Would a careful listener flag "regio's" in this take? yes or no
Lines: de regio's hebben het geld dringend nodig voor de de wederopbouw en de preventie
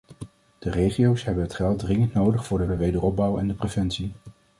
no